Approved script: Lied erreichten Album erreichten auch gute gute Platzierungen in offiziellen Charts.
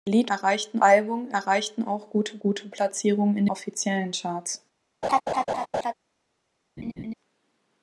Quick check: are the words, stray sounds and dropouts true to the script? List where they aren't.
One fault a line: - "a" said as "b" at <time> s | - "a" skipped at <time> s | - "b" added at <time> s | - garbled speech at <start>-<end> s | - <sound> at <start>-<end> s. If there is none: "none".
- laugh at 5.0-5.9 s
- laugh at 6.8-7.1 s